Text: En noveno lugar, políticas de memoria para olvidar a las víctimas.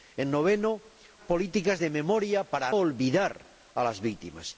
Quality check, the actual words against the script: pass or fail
pass